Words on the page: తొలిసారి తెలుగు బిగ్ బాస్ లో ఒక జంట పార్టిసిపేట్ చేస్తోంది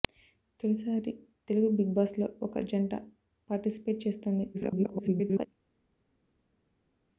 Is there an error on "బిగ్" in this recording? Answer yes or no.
no